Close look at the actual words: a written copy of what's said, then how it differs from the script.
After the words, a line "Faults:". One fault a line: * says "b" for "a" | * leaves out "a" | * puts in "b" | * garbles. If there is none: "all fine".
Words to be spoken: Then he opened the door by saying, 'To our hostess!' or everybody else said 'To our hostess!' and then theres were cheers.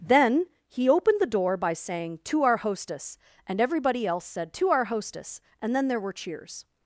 Then he opened the door by saying, 'To our hostess!' and everybody else said 'To our hostess!' and then there were cheers.
Faults:
* says "and" for "or"
* says "there" for "theres"